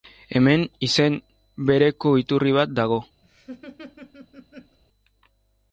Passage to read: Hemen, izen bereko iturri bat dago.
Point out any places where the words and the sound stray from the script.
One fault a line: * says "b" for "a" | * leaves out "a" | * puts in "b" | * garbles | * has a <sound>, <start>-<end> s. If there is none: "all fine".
* has a laugh, 3.2-4.8 s